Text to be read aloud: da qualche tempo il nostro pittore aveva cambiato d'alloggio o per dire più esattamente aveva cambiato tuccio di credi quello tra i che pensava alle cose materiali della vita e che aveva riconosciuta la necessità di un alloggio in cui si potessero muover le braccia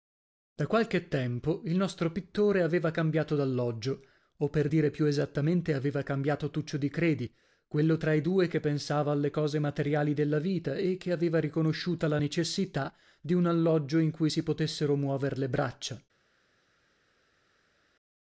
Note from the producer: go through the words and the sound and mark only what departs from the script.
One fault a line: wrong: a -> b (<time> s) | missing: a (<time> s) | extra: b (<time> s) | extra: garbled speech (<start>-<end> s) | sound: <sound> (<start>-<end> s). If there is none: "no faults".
extra: due (8.2 s)